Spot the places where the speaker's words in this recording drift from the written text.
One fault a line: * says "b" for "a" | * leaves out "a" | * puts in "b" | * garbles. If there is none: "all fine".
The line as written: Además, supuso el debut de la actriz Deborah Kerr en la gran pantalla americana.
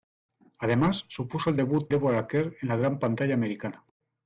* leaves out "de la actriz"